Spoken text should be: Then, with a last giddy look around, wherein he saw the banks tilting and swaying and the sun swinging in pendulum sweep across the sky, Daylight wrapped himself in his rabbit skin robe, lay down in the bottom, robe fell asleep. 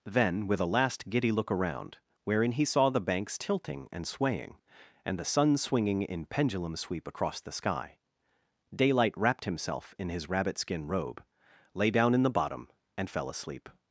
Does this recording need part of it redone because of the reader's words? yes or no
yes